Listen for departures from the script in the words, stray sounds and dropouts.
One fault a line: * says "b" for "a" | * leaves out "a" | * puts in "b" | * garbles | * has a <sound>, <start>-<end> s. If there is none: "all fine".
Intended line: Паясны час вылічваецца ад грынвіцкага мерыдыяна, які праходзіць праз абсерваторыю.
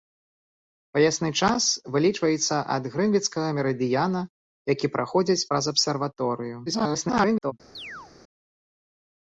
* garbles
* has a chirp, 7.7-8.1 s